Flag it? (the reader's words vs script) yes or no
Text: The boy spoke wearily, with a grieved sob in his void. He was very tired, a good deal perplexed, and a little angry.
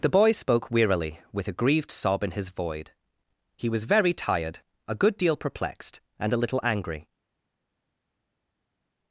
no